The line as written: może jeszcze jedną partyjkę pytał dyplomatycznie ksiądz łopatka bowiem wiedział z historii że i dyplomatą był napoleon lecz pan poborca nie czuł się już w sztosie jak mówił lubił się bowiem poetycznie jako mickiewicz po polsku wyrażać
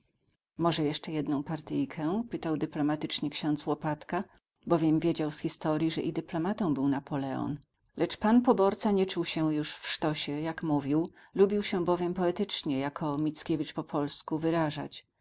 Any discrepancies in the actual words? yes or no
no